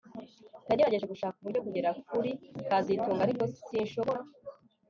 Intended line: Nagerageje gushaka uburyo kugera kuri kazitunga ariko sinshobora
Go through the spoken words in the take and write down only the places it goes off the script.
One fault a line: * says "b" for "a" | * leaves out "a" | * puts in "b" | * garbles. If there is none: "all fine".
all fine